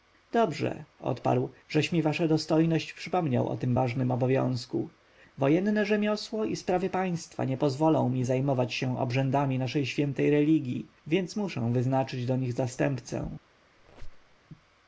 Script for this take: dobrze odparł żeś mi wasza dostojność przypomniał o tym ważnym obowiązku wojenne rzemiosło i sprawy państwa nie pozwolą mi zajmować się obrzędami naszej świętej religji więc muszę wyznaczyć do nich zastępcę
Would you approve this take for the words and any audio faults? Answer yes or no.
no